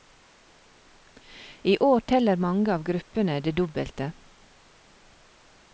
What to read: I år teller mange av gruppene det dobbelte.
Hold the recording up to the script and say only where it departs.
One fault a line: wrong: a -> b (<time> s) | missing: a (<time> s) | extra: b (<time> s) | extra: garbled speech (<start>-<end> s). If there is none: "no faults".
no faults